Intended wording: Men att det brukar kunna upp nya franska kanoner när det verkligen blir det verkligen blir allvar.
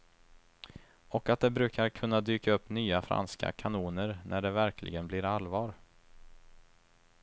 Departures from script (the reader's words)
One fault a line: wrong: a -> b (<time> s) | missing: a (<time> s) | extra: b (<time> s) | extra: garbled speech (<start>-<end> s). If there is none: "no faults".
wrong: Men -> Och (1.1 s)
extra: dyka (2.2 s)
missing: det verkligen blir (5.2 s)